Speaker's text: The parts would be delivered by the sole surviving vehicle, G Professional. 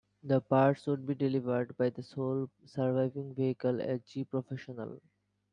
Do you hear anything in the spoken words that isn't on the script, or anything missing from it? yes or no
yes